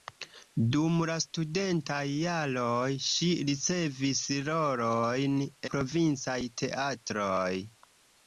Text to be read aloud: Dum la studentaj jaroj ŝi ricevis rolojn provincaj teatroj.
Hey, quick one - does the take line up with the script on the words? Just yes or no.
yes